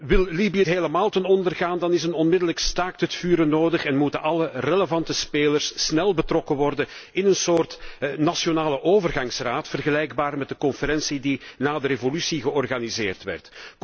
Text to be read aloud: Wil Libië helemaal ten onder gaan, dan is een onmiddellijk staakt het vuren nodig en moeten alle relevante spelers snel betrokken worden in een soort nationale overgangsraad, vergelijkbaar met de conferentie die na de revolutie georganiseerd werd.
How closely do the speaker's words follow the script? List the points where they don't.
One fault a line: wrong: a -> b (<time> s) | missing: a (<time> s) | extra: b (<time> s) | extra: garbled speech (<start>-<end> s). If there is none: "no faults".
no faults